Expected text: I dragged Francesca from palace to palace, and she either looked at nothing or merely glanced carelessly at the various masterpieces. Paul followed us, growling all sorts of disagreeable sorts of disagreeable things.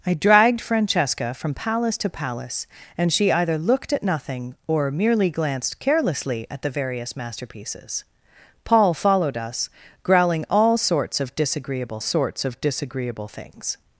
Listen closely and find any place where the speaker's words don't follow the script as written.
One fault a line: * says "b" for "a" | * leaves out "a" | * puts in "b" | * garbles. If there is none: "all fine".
all fine